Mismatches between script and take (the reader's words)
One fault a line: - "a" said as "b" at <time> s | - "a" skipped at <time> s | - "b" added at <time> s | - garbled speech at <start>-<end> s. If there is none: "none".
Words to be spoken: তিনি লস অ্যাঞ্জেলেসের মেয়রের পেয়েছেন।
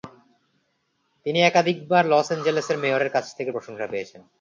- "একাধিকবার" added at 1.4 s
- "কাছ থেকে প্রশংসা" added at 3.1 s